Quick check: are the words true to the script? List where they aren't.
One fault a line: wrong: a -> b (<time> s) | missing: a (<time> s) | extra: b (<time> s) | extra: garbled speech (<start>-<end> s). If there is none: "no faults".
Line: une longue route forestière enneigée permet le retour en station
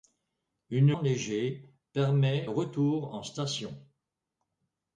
missing: longue route forestière (1.0 s)
missing: le (2.5 s)